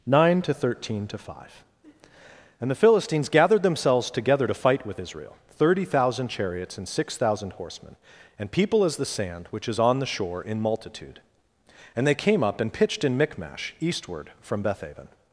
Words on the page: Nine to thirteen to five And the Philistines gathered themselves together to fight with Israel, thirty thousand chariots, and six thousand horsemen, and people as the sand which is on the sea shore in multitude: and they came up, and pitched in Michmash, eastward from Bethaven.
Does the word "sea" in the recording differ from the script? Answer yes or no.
yes